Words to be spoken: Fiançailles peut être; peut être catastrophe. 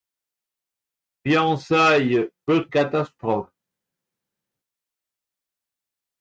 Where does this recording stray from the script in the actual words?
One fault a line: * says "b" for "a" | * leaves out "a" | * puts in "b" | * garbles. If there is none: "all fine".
* leaves out "être peut être"